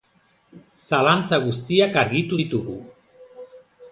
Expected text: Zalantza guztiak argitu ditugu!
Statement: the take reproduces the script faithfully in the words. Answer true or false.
true